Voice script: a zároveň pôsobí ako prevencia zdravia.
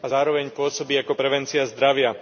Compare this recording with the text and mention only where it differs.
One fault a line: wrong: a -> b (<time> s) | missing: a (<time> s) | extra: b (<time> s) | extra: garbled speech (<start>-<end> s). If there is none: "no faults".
no faults